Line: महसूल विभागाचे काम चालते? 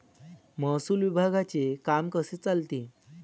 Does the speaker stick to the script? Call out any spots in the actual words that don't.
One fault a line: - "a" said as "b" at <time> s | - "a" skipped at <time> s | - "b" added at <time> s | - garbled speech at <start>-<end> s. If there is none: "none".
- "कसे" added at 2.1 s